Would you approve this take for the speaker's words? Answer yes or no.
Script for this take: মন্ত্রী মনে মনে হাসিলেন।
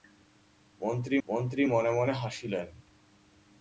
no